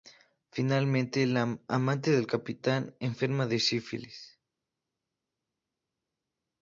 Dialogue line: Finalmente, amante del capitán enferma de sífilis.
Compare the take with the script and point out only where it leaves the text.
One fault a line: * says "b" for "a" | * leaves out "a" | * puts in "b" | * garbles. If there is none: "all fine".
* puts in "la"